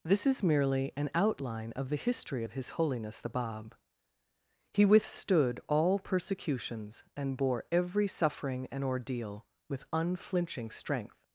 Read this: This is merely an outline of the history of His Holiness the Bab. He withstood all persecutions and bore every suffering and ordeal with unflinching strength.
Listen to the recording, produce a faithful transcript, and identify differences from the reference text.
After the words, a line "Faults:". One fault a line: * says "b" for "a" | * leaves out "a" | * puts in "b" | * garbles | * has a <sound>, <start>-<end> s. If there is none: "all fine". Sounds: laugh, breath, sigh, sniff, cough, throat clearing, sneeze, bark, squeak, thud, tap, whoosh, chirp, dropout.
This is merely an outline of the history of His Holiness the Bab. He withstood all persecutions and bore every suffering and ordeal with unflinching strength.
Faults:
all fine